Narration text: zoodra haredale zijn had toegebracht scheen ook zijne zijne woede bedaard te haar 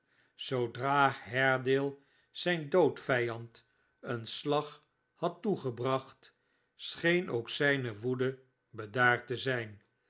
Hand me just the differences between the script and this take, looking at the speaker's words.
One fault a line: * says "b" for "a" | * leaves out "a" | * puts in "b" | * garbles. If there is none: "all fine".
* puts in "doodvijand een slag"
* leaves out "zijne"
* says "zijn" for "haar"